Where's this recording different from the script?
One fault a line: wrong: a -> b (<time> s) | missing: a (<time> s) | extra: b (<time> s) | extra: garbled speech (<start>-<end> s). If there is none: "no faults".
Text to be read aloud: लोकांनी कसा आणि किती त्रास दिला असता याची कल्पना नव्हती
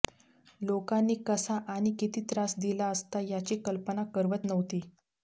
extra: करवत (4.1 s)